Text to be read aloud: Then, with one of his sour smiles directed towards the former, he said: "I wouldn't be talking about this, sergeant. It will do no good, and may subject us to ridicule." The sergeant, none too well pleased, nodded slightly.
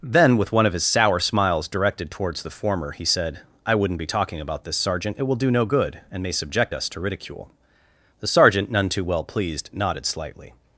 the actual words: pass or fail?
pass